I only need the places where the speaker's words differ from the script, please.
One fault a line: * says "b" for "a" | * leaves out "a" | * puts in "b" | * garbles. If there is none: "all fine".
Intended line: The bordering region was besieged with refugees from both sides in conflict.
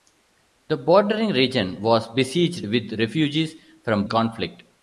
* leaves out "both sides in"